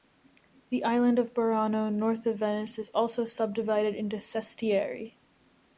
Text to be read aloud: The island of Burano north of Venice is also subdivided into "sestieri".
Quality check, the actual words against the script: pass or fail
pass